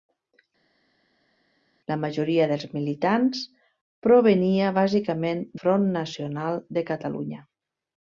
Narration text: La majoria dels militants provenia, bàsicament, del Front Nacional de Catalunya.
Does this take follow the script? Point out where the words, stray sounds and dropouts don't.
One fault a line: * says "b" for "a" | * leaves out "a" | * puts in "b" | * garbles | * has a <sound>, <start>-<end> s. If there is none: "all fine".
* leaves out "del"